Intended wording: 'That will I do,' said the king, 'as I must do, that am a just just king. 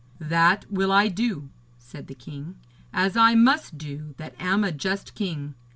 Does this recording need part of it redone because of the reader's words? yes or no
yes